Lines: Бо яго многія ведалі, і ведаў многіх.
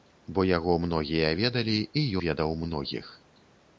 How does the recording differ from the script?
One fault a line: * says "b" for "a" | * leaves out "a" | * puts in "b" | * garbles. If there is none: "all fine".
all fine